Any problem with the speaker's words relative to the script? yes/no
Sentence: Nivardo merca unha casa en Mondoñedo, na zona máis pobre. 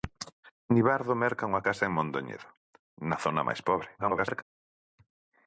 yes